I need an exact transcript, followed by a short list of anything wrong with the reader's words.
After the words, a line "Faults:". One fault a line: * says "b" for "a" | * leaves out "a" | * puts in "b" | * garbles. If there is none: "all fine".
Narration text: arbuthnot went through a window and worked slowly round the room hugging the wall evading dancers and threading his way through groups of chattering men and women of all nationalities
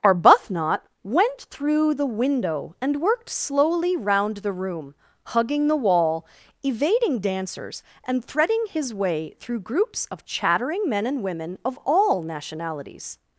arbuthnot went through the window and worked slowly round the room hugging the wall evading dancers and threading his way through groups of chattering men and women of all nationalities
Faults:
* says "the" for "a"